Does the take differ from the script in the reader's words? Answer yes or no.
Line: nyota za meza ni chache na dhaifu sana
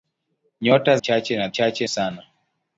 yes